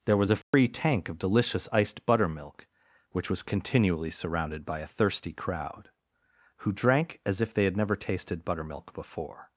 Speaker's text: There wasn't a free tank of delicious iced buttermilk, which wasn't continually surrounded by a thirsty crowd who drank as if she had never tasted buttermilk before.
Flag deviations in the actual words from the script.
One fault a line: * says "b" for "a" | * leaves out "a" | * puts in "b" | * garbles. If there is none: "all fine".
* says "was" for "wasn't"
* says "was" for "wasn't"
* says "they" for "she"